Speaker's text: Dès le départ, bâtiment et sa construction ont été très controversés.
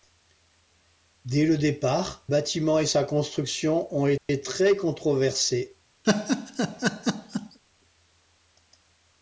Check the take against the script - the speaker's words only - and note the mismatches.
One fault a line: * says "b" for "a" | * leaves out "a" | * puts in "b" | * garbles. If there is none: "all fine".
all fine